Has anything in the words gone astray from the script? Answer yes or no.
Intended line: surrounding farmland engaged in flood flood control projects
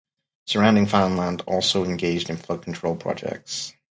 yes